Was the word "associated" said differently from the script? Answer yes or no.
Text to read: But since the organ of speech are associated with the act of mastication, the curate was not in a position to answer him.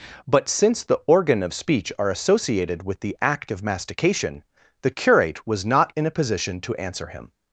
no